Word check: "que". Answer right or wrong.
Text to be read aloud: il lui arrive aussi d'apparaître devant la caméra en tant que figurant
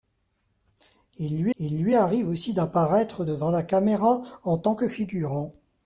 right